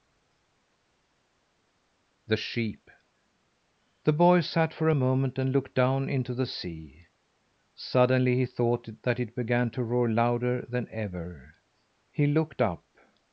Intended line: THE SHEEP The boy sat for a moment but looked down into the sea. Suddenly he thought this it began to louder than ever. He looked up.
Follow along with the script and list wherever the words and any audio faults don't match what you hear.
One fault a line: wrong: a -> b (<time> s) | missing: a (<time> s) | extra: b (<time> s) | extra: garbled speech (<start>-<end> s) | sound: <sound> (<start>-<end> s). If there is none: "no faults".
wrong: but -> and (5.4 s)
wrong: this -> that (9.0 s)
extra: roar (9.8 s)